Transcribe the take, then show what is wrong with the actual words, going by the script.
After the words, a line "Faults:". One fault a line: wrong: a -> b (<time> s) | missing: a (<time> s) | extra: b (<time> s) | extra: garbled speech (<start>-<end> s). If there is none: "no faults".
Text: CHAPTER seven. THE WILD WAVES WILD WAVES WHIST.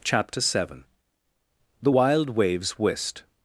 CHAPTER seven. THE WILD WAVES WHIST.
Faults:
missing: WILD WAVES (2.8 s)